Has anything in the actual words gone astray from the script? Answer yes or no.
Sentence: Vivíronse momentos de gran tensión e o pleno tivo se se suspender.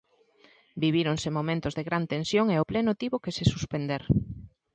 yes